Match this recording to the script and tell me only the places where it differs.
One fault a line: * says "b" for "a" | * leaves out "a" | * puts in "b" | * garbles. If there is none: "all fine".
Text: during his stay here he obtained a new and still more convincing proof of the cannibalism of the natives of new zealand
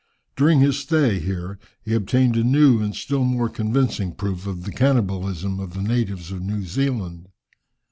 all fine